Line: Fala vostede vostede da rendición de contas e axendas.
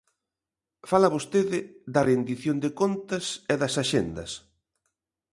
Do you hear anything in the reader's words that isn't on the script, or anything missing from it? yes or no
yes